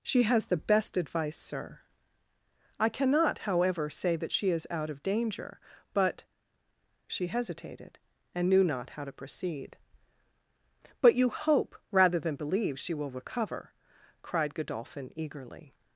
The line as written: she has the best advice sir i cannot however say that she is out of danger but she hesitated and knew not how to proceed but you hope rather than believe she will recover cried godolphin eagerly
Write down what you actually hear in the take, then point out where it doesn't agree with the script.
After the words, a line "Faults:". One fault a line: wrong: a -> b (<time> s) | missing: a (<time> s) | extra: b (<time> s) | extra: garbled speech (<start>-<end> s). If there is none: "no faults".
she has the best advice sir i cannot however say that she is out of danger but she hesitated and knew not how to proceed but you hope rather than believe she will recover cried godolphin eagerly
Faults:
no faults